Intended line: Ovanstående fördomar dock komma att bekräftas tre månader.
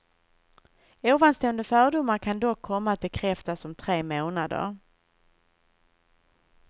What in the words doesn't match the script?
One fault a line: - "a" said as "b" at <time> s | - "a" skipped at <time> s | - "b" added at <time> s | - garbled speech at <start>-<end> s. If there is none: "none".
- "kan" added at 2.2 s
- "om" added at 3.6 s